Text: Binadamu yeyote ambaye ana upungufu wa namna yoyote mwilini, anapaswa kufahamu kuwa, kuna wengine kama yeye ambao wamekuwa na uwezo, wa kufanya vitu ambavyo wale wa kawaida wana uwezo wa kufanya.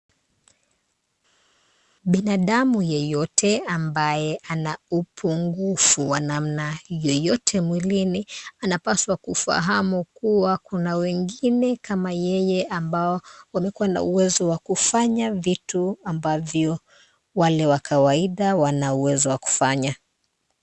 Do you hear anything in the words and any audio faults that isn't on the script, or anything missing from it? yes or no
no